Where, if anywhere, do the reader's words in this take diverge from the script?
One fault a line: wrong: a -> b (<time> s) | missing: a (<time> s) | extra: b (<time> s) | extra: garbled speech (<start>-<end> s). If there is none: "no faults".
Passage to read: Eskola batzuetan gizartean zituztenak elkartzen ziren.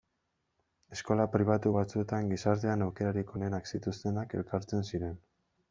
extra: pribatu (1.4 s)
extra: aukerarik onenak (2.9 s)